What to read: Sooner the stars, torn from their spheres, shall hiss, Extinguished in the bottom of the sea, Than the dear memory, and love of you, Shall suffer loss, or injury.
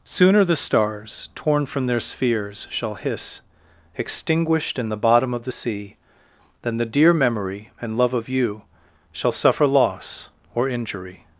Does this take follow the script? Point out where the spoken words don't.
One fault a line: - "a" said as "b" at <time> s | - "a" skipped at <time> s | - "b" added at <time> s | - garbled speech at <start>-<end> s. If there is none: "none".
none